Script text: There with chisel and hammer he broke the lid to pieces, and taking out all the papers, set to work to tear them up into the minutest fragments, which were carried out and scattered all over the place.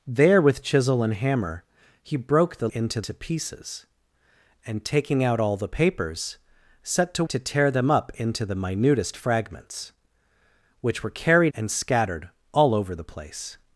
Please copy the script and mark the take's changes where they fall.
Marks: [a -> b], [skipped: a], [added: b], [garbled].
There with chisel and hammer he broke the [lid -> into] to pieces, and taking out all the papers, set to [skipped: work] to tear them up into the minutest fragments, which were carried [skipped: out] and scattered all over the place.